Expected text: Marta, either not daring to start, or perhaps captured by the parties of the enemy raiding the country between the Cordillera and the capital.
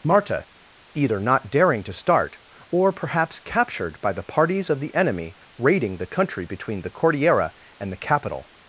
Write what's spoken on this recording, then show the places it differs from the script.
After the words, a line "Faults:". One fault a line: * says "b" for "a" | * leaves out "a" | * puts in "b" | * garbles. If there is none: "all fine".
Marta, either not daring to start, or perhaps captured by the parties of the enemy raiding the country between the Cordillera and the capital.
Faults:
all fine